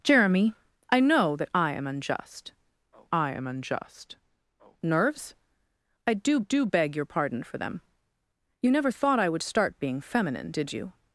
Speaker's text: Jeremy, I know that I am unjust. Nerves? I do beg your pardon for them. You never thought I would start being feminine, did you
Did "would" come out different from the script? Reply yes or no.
no